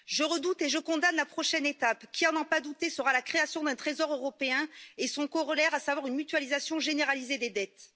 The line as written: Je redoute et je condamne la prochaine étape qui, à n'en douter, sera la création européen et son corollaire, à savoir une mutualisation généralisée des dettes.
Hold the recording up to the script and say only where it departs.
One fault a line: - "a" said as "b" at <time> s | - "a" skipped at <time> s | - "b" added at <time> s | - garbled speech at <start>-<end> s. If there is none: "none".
- "pas" added at 2.4 s
- "d'un Trésor" added at 3.6 s